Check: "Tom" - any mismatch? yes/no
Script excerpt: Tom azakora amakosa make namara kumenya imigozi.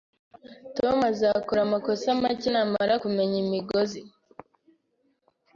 no